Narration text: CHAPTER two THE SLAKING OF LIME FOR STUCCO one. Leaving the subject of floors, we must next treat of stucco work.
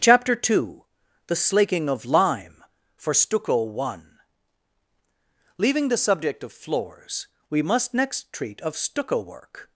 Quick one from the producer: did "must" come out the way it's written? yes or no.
yes